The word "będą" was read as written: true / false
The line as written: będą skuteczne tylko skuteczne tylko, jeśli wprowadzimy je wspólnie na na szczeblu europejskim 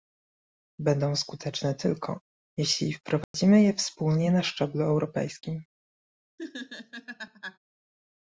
true